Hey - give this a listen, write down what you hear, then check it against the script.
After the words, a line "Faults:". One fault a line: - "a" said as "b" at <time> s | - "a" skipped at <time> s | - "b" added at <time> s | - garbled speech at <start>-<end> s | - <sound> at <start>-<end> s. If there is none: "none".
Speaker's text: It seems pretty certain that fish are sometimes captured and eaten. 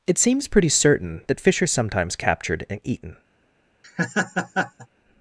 It seems pretty certain that fish are sometimes captured and eaten.
Faults:
- laugh at 3.8-4.9 s